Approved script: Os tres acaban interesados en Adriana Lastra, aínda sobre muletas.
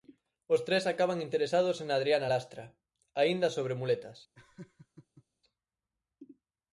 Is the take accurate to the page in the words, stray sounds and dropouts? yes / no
no